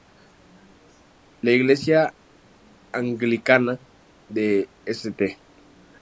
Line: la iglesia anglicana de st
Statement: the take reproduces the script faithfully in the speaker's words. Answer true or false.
true